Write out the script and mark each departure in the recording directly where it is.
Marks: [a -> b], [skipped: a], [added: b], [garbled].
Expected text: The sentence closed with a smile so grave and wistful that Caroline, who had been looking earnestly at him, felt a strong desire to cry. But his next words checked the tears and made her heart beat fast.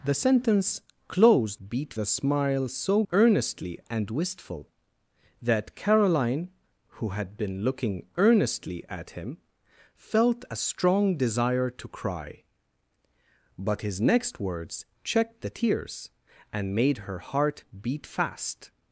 The sentence closed [with -> beat] a smile so [grave -> earnestly] and wistful that Caroline, who had been looking earnestly at him, felt a strong desire to cry. But his next words checked the tears and made her heart beat fast.